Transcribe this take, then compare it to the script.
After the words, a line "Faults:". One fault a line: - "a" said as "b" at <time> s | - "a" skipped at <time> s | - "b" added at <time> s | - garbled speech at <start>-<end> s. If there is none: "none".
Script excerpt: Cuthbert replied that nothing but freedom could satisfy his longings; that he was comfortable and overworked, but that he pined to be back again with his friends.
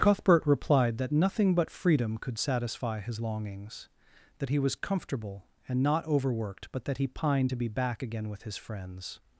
Cuthbert replied that nothing but freedom could satisfy his longings; that he was comfortable and not overworked, but that he pined to be back again with his friends.
Faults:
- "not" added at 5.8 s